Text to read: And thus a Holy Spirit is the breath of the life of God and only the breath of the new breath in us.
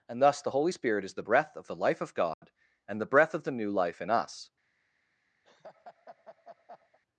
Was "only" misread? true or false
true